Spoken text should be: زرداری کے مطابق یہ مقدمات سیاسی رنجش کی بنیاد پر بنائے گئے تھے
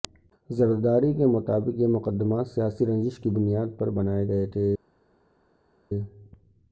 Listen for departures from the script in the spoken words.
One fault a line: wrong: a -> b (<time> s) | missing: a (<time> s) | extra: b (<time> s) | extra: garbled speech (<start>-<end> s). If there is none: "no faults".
no faults